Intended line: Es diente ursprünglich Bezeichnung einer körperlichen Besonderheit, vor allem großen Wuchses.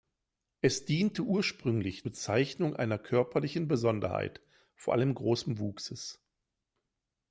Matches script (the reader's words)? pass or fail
pass